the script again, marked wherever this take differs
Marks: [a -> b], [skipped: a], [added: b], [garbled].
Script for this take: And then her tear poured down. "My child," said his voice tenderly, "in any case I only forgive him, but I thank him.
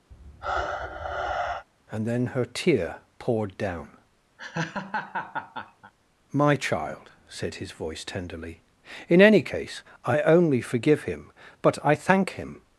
And then her tear poured down. "My child," said his voice tenderly, "in any case I only forgive him, but I thank him.